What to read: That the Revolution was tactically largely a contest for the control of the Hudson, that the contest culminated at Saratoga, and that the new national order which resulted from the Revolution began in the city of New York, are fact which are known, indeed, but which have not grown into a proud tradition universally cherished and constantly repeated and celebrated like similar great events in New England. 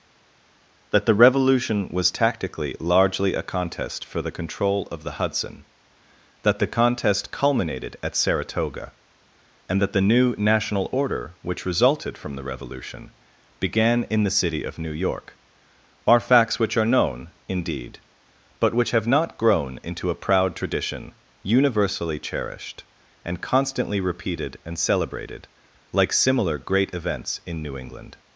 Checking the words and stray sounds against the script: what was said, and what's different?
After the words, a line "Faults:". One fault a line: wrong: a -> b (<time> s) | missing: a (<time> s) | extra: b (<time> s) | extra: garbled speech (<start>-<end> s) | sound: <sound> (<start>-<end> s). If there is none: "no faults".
That the Revolution was tactically largely a contest for the control of the Hudson, that the contest culminated at Saratoga, and that the new national order which resulted from the Revolution began in the city of New York, are facts which are known, indeed, but which have not grown into a proud tradition universally cherished and constantly repeated and celebrated like similar great events in New England.
Faults:
wrong: fact -> facts (16.2 s)